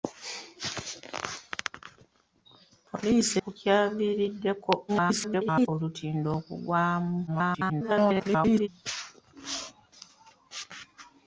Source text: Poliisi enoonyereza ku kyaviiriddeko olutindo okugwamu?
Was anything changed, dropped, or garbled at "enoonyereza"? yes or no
yes